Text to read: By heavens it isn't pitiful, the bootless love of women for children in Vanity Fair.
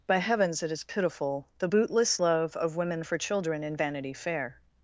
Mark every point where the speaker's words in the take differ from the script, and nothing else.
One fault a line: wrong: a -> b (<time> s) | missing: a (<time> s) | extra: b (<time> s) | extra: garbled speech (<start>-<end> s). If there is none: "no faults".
wrong: isn't -> is (0.7 s)